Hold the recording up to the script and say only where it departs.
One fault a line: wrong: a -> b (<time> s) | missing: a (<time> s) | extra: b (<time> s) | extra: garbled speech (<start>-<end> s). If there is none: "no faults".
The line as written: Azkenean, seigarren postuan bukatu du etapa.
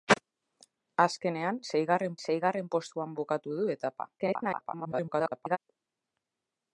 extra: seigarren (2.3 s)
extra: garbled speech (4.2-5.6 s)